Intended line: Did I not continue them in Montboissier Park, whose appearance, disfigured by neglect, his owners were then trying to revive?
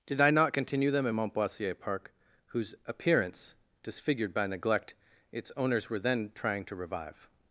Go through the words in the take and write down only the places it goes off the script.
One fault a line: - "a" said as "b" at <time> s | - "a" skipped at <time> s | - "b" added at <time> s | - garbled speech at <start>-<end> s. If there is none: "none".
- "his" said as "its" at 5.3 s